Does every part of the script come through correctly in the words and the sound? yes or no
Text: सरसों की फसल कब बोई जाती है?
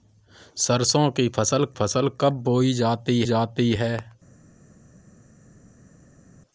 no